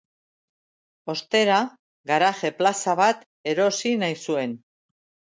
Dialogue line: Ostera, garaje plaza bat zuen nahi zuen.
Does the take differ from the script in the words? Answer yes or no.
yes